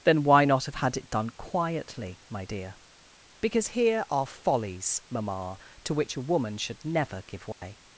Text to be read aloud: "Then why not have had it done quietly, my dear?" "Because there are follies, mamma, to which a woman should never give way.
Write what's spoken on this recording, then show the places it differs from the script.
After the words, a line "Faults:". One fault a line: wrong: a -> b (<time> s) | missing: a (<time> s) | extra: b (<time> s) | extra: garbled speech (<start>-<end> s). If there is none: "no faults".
"Then why not have had it done quietly, my dear?" "Because here are follies, mamma, to which a woman should never give way.
Faults:
wrong: there -> here (3.7 s)